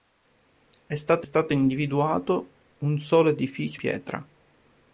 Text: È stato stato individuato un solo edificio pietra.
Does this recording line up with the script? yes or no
yes